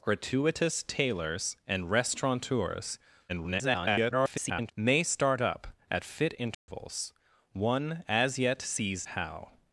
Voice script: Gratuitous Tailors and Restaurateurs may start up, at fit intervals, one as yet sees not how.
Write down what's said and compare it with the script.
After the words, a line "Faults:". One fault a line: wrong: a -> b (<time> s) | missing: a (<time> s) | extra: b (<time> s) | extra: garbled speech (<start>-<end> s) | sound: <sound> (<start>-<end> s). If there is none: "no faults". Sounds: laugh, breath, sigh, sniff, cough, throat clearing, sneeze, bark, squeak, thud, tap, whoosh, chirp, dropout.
Gratuitous Tailors and Restaurateurs [garbled] may start up, at fit intervals, one as yet sees how.
Faults:
extra: garbled speech (3.3-4.7 s)
sound: dropout (6.5-6.7 s)
missing: not (9.1 s)